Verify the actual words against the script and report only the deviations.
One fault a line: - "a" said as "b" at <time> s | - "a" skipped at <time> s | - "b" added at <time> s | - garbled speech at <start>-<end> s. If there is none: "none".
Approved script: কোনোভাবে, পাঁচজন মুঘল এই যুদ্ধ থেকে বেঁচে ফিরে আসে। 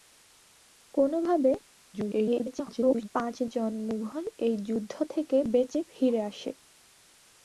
- garbled speech at 1.9-3.1 s